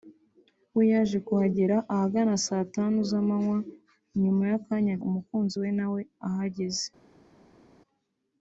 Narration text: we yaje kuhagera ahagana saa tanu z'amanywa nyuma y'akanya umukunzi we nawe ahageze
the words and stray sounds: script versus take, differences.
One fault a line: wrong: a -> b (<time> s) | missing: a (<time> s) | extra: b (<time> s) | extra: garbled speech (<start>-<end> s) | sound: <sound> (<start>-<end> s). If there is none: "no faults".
no faults